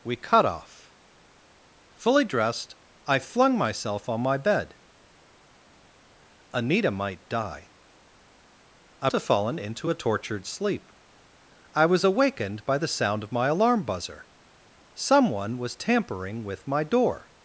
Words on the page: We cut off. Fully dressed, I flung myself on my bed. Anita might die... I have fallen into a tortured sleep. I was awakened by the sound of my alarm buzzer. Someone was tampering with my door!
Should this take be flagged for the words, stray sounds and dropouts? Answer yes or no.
no